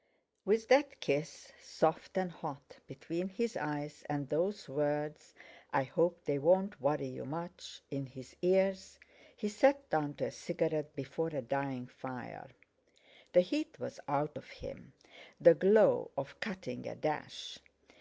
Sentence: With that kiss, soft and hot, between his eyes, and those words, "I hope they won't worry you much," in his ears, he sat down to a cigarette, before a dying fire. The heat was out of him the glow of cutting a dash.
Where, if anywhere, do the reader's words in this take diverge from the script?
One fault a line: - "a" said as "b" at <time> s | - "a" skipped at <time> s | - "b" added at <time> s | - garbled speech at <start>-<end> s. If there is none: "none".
none